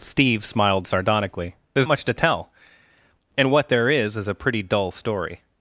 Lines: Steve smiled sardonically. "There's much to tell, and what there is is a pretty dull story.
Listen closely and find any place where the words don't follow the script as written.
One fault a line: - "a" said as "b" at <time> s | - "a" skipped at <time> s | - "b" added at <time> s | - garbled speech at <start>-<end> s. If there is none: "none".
none